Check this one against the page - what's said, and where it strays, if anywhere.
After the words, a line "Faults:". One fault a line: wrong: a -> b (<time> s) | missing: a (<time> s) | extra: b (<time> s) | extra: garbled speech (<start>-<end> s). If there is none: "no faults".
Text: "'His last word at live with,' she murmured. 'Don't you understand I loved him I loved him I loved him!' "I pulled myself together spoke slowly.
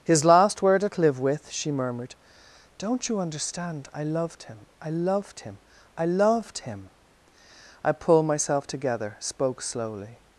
"'His last word at live with,' she murmured. 'Don't you understand I loved him I loved him I loved him!' "I pulled myself together spoke slowly.
Faults:
no faults